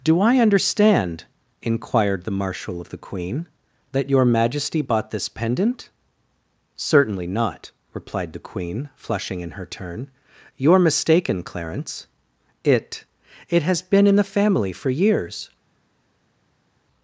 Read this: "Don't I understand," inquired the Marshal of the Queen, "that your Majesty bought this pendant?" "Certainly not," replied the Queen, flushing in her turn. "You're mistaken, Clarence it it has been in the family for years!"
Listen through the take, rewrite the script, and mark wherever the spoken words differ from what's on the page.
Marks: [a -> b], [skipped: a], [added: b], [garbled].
["Don't -> Do] I understand," inquired the Marshal of the Queen, "that your Majesty bought this pendant?" "Certainly not," replied the Queen, flushing in her turn. "You're mistaken, Clarence it it has been in the family for years!"